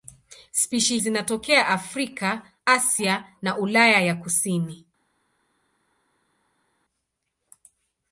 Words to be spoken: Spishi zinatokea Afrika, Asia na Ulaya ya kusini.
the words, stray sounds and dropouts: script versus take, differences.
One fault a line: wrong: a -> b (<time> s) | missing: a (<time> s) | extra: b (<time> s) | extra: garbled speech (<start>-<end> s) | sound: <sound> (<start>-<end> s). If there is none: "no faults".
no faults